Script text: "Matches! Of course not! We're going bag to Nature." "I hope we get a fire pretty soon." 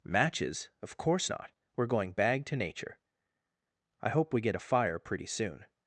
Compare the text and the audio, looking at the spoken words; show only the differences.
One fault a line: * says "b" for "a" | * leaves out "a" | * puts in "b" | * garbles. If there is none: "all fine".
all fine